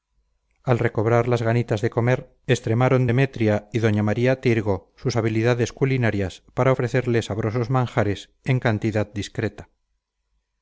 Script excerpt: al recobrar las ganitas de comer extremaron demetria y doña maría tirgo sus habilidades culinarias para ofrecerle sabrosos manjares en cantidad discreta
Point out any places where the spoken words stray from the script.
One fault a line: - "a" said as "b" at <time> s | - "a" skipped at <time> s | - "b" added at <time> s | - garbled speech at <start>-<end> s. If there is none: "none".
none